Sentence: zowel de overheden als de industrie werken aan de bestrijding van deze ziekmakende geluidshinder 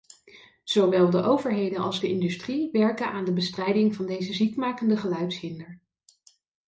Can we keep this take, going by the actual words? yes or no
yes